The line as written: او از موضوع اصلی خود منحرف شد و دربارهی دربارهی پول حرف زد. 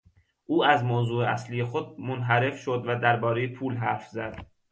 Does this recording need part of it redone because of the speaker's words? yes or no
yes